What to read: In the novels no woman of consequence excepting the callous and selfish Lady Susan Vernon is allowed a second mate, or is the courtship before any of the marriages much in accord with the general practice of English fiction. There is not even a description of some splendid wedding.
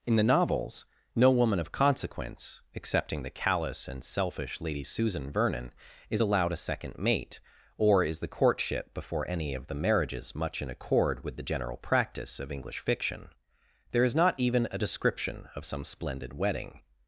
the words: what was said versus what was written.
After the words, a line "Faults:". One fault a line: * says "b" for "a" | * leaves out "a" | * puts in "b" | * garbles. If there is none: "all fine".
In the novels no woman of consequence excepting the callous and selfish Lady Susan Vernon is allowed a second mate, or is the courtship before any of the marriages much in accord with the general practice of English fiction. There is not even a description of some splendid wedding.
Faults:
all fine